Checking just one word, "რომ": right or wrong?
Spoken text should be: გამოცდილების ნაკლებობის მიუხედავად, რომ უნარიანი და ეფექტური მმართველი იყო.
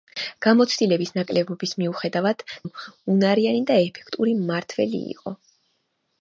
right